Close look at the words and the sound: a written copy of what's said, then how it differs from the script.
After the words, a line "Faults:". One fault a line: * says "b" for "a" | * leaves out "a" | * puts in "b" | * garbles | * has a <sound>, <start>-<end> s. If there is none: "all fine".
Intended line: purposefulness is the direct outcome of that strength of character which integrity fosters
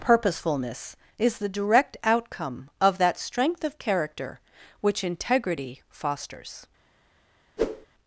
purposefulness is the direct outcome of that strength of character which integrity fosters
Faults:
* has a whoosh, 7.6-7.9 s